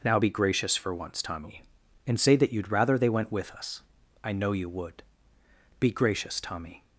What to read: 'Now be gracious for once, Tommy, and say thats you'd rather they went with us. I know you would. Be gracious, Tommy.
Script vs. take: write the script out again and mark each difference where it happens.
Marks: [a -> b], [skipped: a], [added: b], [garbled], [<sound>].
'Now be gracious for once, Tommy, and say [thats -> that] you'd rather they went with us. I know you would. Be gracious, Tommy.